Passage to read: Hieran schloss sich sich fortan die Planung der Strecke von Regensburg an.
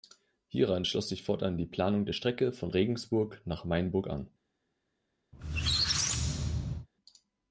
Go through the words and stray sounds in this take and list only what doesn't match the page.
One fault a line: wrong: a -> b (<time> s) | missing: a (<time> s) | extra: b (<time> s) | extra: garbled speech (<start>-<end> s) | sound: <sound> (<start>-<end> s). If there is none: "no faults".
missing: sich (1.2 s)
extra: nach Mainburg (3.4 s)
sound: squeak (5.3-6.9 s)